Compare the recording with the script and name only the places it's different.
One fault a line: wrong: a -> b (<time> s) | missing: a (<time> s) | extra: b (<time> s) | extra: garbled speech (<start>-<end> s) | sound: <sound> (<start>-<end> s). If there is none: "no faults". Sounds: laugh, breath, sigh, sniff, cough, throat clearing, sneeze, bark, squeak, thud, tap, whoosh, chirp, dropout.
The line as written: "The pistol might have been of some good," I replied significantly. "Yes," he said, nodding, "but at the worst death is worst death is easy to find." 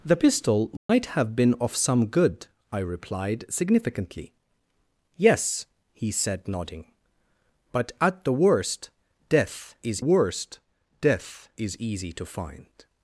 sound: dropout (0.8-0.9 s)